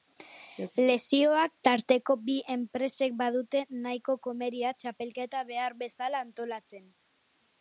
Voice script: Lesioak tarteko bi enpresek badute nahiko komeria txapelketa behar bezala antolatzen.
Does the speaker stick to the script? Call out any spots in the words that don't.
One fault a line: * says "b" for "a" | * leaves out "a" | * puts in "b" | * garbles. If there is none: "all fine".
all fine